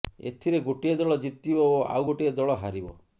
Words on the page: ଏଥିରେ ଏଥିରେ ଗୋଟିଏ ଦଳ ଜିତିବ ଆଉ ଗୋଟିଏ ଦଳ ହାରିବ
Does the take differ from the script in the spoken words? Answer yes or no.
yes